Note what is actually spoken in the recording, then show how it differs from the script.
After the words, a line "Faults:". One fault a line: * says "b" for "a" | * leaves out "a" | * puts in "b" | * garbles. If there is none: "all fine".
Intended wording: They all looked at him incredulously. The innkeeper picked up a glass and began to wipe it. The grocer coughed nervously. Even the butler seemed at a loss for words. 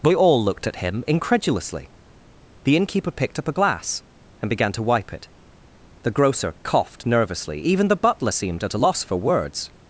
They all looked at him incredulously. The innkeeper picked up a glass and began to wipe it. The grocer coughed nervously. Even the butler seemed at a loss for words.
Faults:
all fine